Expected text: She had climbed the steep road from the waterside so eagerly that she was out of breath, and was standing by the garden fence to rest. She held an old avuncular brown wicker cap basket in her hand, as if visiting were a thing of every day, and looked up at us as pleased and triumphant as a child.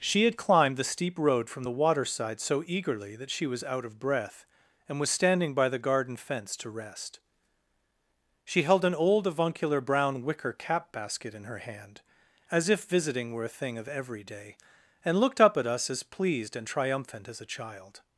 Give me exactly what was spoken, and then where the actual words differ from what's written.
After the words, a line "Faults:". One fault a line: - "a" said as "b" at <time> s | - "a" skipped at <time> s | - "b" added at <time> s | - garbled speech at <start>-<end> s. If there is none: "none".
She had climbed the steep road from the waterside so eagerly that she was out of breath, and was standing by the garden fence to rest. She held an old avuncular brown wicker cap basket in her hand, as if visiting were a thing of every day, and looked up at us as pleased and triumphant as a child.
Faults:
none